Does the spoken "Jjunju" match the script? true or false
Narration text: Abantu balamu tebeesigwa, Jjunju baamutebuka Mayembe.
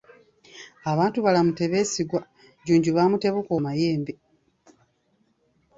true